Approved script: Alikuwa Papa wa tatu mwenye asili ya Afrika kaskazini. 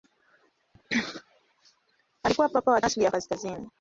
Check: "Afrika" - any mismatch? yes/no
yes